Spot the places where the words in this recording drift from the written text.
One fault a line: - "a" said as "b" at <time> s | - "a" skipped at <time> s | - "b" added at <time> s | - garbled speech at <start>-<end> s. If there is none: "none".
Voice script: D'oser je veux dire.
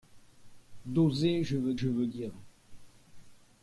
- "je veux" added at 1.7 s